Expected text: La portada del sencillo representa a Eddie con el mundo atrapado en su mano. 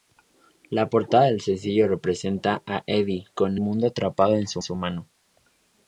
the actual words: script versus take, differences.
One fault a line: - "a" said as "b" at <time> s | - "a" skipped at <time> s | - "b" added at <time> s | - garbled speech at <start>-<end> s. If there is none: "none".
- "el" skipped at 3.6 s
- "su" added at 4.6 s